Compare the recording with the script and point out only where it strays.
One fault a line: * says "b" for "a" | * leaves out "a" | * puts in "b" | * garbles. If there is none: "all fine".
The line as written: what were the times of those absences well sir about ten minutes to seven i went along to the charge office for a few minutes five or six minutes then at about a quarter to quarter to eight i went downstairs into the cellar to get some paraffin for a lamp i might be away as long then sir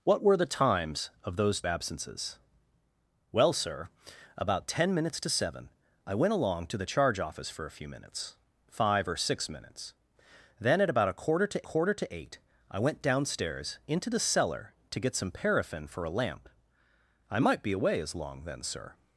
all fine